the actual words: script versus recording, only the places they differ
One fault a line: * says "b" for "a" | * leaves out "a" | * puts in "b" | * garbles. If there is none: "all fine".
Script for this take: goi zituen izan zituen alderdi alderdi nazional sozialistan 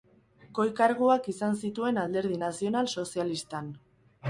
* says "karguak" for "zituen"
* leaves out "alderdi"